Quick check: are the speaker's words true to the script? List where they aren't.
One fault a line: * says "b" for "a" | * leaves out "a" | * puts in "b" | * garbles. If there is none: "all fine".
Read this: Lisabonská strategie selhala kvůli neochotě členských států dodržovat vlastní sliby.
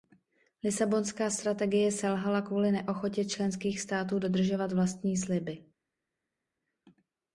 all fine